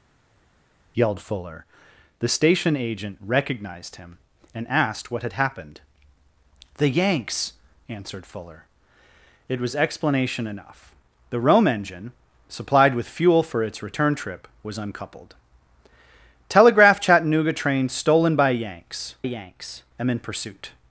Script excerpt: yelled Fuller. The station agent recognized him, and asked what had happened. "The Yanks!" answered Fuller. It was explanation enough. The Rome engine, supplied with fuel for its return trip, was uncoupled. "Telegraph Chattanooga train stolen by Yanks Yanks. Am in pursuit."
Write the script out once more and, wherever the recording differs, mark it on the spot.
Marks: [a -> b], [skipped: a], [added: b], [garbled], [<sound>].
yelled Fuller. The station agent recognized him, and asked what had happened. "The Yanks!" answered Fuller. It was explanation enough. The Rome engine, supplied with fuel for its return trip, was uncoupled. "Telegraph Chattanooga train stolen by Yanks Yanks. Am in pursuit."